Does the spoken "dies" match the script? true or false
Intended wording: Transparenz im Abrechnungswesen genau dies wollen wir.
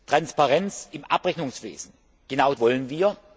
false